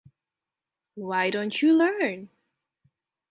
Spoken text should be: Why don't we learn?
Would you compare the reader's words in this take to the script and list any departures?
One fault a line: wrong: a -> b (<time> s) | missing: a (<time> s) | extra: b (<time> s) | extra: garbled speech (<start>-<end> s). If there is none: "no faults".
wrong: we -> you (1.6 s)